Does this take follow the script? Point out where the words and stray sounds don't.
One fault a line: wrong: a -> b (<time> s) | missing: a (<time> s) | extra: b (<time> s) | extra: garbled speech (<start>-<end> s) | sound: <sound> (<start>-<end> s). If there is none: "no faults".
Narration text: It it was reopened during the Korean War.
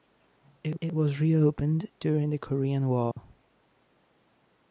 sound: dropout (3.1-3.2 s)